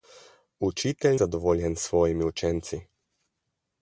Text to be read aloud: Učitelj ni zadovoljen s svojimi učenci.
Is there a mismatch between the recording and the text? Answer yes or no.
yes